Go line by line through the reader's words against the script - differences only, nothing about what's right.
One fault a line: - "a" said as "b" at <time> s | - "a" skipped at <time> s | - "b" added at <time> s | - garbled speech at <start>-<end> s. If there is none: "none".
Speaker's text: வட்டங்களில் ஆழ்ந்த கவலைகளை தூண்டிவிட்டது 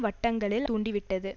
- "ஆழ்ந்த கவலைகளை" skipped at 0.7 s